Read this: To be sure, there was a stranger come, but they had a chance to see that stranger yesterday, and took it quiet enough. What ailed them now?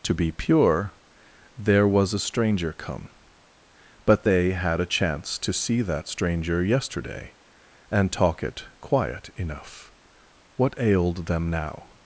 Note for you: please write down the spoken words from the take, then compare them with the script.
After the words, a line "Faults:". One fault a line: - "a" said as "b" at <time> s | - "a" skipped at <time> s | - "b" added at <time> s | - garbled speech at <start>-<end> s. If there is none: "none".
To be pure, there was a stranger come, but they had a chance to see that stranger yesterday, and talk it quiet enough. What ailed them now?
Faults:
- "sure" said as "pure" at 0.3 s
- "took" said as "talk" at 8.1 s